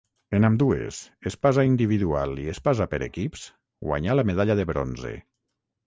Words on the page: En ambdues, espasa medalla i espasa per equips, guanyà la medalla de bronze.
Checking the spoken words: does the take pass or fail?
fail